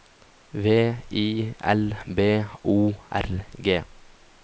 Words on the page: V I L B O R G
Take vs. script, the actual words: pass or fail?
pass